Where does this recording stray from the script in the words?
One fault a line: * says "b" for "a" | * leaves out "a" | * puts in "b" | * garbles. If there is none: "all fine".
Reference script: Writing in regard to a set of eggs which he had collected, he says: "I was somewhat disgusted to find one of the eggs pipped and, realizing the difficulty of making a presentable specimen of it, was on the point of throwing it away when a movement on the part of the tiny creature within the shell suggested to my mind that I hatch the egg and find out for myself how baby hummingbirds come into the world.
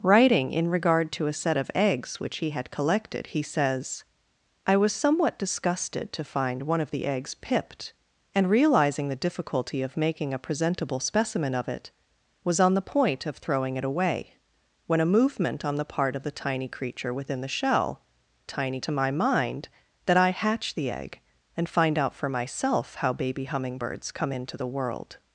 * says "tiny" for "suggested"